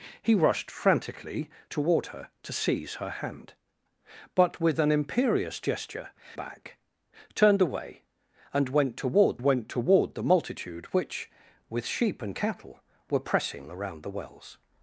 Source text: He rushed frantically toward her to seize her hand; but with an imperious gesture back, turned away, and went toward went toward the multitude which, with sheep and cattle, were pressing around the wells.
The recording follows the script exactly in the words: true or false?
true